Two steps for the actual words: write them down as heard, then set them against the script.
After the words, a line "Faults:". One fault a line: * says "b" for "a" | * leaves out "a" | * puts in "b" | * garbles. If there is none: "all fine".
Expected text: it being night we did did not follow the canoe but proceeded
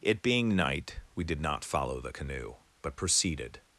it being night we did not follow the canoe but proceeded
Faults:
* leaves out "did"